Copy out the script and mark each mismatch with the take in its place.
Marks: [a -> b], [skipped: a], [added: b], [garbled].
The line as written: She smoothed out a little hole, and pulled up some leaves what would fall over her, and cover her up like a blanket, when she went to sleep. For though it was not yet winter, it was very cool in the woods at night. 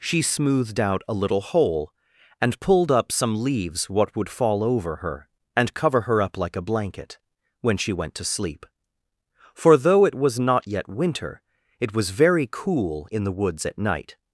She smoothed out a little hole, and pulled up some leaves what would fall over her, and cover her up like a blanket, when she went to sleep. For though it was not yet winter, it was very cool in the woods at night.